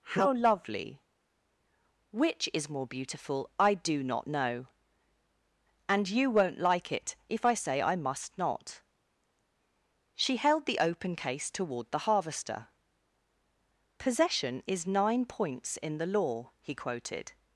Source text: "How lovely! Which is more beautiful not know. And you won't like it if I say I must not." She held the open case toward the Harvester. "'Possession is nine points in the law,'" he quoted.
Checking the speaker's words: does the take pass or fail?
fail